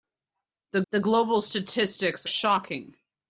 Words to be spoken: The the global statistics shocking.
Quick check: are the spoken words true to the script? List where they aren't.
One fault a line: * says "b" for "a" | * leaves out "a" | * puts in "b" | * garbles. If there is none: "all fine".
all fine